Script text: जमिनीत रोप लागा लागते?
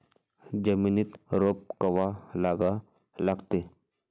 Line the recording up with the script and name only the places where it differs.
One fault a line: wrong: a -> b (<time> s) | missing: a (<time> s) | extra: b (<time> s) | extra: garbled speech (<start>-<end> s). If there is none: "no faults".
extra: कवा (1.8 s)